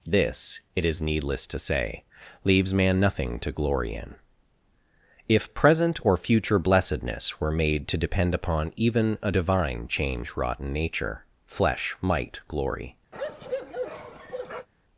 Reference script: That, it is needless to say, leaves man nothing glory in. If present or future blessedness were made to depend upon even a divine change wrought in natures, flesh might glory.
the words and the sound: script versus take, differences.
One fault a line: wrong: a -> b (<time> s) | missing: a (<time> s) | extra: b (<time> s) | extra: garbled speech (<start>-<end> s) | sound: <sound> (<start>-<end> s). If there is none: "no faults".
wrong: That -> This (0.0 s)
extra: to (3.4 s)
wrong: natures -> nature (10.7 s)
sound: bark (13.1-14.7 s)